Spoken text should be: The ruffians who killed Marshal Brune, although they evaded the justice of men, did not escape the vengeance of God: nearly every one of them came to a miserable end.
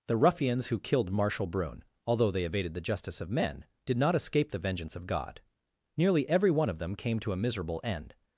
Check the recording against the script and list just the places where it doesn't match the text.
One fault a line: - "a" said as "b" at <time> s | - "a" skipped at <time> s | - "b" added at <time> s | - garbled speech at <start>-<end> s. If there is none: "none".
none